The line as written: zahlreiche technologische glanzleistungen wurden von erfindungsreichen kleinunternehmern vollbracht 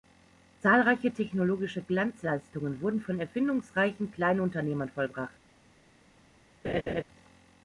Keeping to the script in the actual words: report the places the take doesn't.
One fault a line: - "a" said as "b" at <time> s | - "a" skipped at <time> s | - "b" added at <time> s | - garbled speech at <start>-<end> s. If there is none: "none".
none